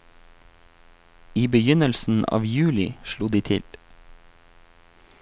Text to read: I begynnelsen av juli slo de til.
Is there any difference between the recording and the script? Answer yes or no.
no